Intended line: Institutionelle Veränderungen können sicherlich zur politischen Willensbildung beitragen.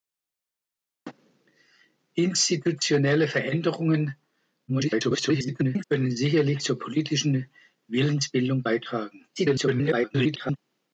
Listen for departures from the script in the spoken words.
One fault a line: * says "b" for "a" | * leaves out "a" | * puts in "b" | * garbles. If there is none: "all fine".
* garbles
* garbles